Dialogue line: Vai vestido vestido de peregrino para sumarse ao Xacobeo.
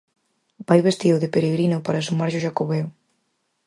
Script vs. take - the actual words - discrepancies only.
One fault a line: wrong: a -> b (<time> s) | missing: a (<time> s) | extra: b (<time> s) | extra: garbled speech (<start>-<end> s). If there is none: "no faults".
missing: vestido (1.2 s)